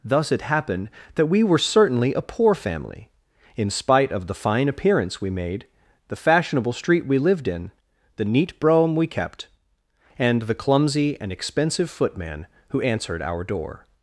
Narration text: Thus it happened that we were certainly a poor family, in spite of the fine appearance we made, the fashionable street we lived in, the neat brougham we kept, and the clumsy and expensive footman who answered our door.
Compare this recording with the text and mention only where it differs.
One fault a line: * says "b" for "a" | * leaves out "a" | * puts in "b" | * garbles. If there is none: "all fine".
all fine